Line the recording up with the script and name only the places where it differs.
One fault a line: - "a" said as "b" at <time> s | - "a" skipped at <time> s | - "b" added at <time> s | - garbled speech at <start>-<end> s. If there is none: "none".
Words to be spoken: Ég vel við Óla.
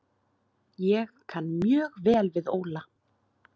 - "kann mjög" added at 1.3 s